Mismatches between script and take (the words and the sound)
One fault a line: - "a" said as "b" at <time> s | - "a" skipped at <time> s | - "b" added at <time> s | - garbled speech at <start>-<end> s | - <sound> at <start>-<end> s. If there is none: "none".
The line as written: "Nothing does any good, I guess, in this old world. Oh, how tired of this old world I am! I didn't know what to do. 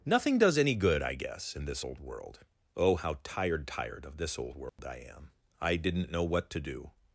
- "tired" added at 3.7 s
- dropout at 4.7-4.8 s